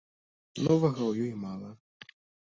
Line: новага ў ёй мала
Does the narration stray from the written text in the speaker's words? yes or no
no